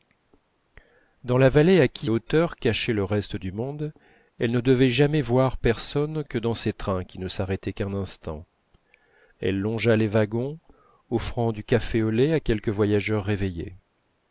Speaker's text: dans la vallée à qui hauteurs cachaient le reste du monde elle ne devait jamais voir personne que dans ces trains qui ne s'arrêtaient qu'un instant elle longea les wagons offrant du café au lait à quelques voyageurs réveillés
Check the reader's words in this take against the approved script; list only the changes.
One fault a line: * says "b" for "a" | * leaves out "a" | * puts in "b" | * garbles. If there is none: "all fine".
all fine